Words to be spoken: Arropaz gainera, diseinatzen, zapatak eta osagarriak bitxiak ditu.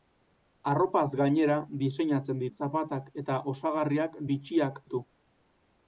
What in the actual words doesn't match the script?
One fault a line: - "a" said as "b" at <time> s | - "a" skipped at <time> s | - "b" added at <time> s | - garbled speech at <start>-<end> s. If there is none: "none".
none